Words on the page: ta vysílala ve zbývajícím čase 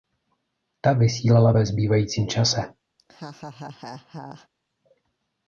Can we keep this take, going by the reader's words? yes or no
yes